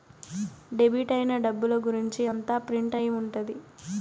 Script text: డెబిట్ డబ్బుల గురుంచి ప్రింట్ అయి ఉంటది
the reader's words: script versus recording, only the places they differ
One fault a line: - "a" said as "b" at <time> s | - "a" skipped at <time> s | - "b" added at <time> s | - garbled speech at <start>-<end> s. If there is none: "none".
- "అయిన" added at 1.1 s
- "అంతా" added at 2.3 s